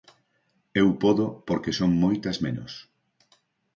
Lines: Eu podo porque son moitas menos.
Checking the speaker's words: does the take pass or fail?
pass